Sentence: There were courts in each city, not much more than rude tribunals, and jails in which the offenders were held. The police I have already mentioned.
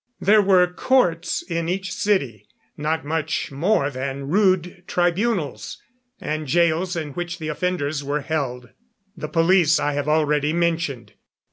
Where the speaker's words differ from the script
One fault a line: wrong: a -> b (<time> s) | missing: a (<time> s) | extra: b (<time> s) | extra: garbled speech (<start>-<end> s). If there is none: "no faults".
no faults